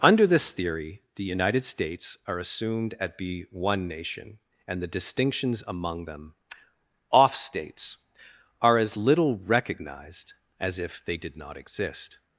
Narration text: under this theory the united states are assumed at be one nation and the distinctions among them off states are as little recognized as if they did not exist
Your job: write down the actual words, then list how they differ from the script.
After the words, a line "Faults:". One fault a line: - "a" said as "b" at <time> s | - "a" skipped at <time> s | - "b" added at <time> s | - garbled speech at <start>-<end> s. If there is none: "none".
under this theory the united states are assumed at be one nation and the distinctions among them off states are as little recognized as if they did not exist
Faults:
none